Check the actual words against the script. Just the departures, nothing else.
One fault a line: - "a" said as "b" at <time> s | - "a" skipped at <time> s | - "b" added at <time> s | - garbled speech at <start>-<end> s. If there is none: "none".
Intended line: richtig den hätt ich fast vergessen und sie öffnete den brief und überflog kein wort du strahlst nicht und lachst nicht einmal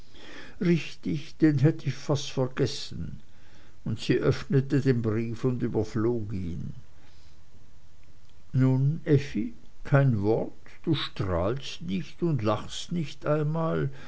- "ihn nun effi" added at 6.3 s